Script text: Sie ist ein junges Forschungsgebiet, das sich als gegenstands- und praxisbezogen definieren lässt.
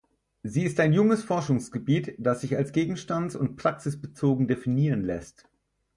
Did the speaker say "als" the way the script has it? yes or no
yes